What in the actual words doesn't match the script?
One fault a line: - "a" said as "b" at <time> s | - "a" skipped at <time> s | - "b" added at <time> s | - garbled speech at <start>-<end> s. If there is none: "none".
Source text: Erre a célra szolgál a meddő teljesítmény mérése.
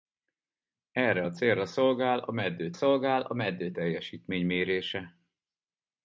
- "szolgál a meddő" added at 2.7 s